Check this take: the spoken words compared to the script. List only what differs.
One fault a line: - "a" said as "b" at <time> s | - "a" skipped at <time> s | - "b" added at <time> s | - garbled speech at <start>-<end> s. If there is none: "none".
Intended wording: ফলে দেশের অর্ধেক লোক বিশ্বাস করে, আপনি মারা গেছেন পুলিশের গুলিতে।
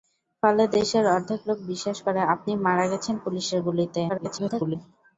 - garbled speech at 4.1-4.8 s